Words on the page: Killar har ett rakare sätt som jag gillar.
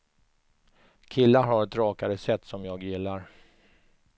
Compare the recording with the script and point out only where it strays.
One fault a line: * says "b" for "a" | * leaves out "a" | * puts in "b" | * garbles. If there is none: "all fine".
all fine